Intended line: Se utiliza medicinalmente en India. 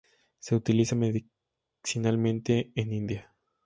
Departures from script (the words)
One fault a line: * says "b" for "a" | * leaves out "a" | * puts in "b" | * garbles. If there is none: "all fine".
all fine